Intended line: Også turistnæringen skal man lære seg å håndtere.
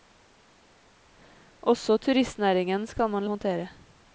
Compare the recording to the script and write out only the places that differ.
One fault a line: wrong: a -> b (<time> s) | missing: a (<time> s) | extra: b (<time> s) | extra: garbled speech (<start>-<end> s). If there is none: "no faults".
missing: lære seg (3.3 s)